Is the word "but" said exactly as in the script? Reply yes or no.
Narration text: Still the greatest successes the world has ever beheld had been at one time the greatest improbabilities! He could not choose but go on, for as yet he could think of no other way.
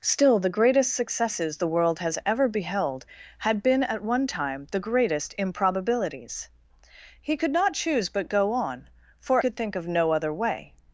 yes